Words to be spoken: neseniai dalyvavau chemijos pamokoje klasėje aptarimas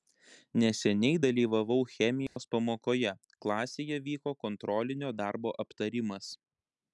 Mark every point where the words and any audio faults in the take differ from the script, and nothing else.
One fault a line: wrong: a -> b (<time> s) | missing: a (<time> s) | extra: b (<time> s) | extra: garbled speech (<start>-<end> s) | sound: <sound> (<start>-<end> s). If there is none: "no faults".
sound: dropout (2.3-2.4 s)
extra: vyko kontrolinio darbo (4.1 s)